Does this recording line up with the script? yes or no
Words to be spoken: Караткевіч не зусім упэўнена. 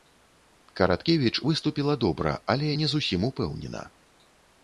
no